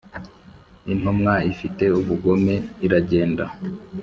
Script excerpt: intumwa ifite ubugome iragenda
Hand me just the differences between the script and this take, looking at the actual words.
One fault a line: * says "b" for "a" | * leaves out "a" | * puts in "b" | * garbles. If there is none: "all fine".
all fine